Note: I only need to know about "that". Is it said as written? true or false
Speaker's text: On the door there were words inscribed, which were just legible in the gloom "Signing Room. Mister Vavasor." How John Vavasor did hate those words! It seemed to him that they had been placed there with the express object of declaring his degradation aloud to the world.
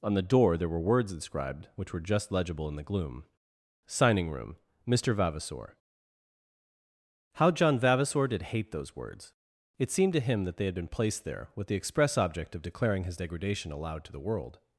true